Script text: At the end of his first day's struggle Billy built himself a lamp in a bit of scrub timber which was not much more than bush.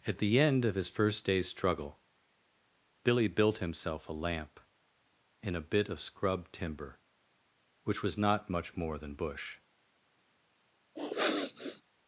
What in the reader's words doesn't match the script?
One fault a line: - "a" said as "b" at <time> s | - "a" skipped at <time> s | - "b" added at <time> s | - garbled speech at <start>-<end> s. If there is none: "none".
none